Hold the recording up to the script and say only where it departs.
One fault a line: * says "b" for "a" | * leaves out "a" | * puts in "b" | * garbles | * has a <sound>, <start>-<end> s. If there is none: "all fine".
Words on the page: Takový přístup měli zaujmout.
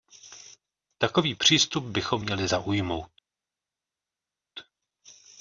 * puts in "bychom"